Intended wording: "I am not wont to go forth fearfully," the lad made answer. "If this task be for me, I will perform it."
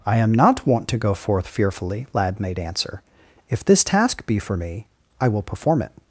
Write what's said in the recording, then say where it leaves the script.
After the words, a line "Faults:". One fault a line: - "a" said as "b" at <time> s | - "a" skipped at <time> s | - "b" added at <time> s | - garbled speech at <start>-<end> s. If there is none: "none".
"I am not wont to go forth fearfully," lad made answer. "If this task be for me, I will perform it."
Faults:
- "the" skipped at 2.1 s